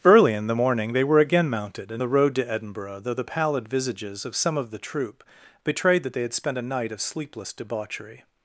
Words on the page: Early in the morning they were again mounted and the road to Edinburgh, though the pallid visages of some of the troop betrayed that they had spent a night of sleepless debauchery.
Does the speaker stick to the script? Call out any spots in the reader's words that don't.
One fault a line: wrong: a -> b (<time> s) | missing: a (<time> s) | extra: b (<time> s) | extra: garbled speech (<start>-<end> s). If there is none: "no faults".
no faults